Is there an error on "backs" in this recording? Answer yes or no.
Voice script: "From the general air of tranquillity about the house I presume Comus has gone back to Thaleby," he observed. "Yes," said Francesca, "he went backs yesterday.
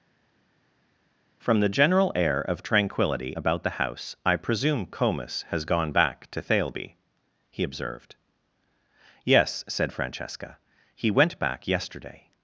yes